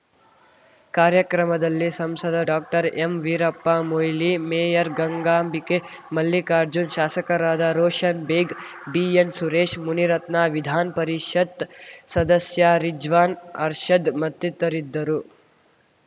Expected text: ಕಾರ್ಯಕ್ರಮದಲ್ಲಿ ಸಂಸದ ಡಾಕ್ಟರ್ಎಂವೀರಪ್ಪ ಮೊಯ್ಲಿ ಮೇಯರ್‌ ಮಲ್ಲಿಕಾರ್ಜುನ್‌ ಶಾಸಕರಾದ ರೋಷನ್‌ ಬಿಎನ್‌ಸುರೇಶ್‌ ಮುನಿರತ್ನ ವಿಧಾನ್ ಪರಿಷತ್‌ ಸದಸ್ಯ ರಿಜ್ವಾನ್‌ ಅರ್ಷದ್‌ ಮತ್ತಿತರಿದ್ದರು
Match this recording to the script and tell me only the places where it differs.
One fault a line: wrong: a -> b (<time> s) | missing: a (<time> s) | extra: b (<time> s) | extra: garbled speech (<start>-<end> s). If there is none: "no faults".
extra: ಗಂಗಾಂಬಿಕೆ (4.9 s)
extra: ಬೇಗ್ (8.3 s)